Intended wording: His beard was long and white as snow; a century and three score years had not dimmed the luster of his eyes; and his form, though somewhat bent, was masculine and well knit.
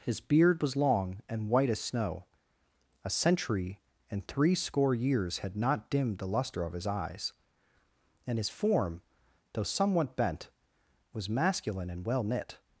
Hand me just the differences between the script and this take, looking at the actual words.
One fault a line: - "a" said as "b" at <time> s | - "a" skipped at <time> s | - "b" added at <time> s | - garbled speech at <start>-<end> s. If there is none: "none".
none